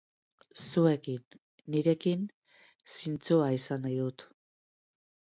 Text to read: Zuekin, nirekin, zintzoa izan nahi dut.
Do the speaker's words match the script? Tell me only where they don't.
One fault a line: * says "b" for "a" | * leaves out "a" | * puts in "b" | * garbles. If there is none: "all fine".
all fine